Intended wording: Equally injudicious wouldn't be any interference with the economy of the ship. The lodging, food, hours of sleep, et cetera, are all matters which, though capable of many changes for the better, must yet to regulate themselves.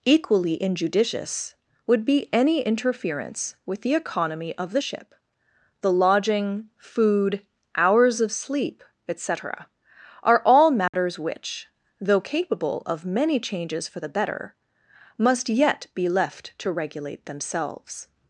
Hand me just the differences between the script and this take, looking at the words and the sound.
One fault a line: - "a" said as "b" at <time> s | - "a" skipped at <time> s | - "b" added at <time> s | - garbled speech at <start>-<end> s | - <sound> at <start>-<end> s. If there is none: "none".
- "wouldn't" said as "would" at 1.8 s
- dropout at 10.9-10.9 s
- "be left" added at 15.9 s